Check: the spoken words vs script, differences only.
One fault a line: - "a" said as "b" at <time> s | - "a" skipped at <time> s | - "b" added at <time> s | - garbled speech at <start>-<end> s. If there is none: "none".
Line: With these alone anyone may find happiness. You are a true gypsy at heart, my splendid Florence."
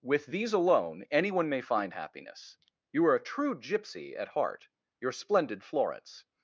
- "my" said as "your" at 5.0 s